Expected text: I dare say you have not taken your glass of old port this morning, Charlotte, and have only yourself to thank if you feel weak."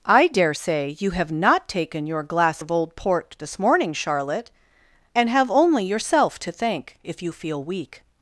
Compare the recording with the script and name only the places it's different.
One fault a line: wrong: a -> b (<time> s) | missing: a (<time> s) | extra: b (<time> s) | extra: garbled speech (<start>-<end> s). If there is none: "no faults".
no faults